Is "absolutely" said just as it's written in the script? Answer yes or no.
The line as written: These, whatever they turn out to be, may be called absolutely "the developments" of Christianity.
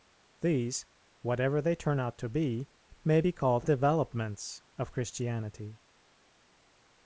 no